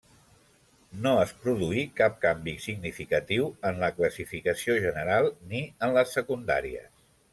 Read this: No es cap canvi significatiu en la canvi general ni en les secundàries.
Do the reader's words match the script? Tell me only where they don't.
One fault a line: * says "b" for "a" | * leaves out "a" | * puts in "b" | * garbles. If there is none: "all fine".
* puts in "produí"
* says "classificació" for "canvi"